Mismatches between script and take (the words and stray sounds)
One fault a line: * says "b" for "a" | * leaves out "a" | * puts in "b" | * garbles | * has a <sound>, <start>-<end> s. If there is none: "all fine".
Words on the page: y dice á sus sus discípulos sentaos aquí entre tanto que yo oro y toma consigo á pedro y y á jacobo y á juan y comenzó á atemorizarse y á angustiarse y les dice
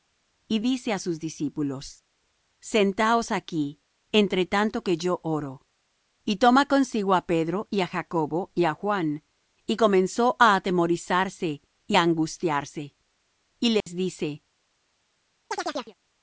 * leaves out "sus"
* leaves out "y"
* has a dropout, 13.8-13.9 s
* has a chirp, 15.5-15.9 s